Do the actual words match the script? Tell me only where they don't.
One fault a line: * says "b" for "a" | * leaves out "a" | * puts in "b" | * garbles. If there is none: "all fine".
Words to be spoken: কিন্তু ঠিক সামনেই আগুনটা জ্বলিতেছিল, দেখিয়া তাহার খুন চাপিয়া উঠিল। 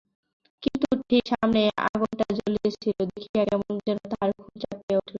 * puts in "কেমন যেন"